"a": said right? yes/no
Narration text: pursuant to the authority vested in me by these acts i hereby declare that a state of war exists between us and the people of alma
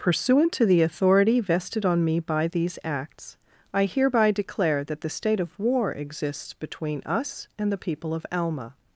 no